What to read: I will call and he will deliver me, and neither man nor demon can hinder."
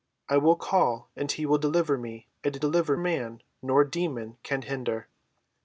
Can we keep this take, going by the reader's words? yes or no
no